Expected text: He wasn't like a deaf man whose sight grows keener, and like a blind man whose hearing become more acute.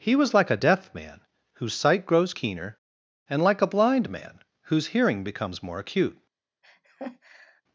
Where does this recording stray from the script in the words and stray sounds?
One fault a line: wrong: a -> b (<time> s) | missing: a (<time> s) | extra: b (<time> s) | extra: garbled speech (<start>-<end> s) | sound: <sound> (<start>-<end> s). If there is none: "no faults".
wrong: wasn't -> was (0.1 s)
wrong: become -> becomes (5.2 s)
sound: laugh (6.6-7.6 s)